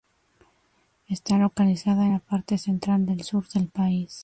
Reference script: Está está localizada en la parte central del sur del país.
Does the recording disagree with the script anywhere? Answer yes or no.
yes